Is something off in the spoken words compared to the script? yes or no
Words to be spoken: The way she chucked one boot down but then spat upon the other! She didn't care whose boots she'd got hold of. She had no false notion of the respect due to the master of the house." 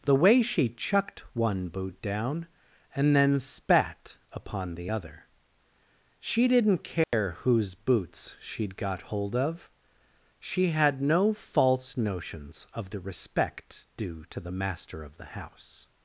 yes